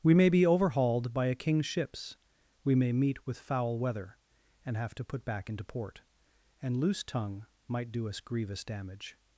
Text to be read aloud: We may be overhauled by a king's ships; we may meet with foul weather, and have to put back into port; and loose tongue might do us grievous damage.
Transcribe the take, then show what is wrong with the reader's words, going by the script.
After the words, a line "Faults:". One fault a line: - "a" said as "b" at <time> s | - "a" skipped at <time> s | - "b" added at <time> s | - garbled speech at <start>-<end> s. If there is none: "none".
We may be overhauled by a king's ships; we may meet with foul weather, and have to put back into port; and loose tongue might do us grievous damage.
Faults:
none